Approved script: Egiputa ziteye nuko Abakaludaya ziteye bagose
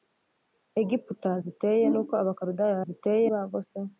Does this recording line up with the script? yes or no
yes